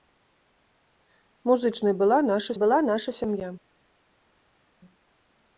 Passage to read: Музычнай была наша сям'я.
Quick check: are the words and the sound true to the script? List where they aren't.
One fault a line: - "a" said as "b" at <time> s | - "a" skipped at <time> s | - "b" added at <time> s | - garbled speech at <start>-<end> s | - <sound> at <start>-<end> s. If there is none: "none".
- "была наша" added at 2.5 s